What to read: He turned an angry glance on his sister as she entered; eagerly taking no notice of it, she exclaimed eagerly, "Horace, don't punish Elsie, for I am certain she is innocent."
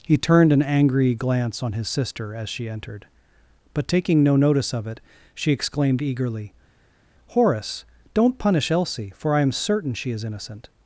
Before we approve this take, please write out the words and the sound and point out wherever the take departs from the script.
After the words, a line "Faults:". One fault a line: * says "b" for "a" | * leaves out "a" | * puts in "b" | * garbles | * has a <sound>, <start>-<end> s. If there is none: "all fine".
He turned an angry glance on his sister as she entered; but taking no notice of it, she exclaimed eagerly, "Horace, don't punish Elsie, for I am certain she is innocent."
Faults:
* says "but" for "eagerly"